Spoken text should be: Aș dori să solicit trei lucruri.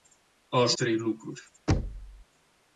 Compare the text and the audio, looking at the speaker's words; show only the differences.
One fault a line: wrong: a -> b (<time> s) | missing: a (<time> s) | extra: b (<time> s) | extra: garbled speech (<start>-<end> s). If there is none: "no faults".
missing: dori să solicit (0.8 s)